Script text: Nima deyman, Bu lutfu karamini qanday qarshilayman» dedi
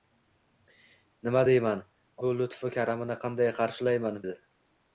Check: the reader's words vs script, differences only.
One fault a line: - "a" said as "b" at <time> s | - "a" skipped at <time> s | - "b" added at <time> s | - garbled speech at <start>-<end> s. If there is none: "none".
none